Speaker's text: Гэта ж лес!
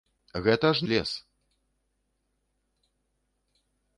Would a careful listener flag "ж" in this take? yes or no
no